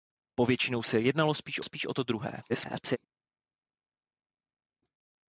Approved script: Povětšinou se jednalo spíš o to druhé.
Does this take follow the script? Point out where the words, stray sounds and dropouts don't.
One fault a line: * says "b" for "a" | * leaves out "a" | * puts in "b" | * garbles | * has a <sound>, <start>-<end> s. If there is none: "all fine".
* puts in "spíš"
* garbles